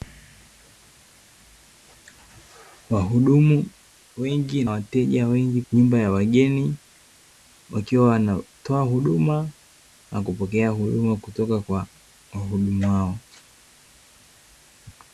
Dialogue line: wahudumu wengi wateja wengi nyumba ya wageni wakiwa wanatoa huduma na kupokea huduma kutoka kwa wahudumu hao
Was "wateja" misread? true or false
false